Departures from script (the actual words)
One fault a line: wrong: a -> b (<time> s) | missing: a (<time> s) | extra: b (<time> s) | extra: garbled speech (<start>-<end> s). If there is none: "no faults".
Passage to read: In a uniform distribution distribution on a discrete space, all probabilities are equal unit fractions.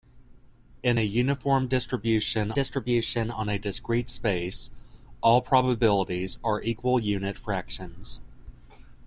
no faults